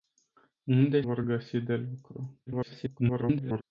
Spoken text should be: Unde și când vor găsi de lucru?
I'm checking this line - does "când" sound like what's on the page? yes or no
no